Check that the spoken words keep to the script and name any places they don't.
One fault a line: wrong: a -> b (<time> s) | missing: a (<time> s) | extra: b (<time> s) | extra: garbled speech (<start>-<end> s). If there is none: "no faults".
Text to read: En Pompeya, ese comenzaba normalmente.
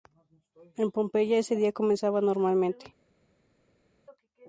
extra: día (1.6 s)